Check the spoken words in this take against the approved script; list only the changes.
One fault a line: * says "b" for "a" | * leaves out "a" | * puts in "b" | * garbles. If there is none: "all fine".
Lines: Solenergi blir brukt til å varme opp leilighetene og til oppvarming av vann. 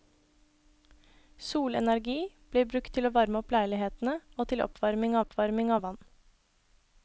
* puts in "oppvarming"